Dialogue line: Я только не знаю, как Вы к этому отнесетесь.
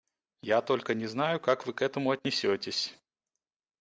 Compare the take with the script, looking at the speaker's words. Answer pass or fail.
pass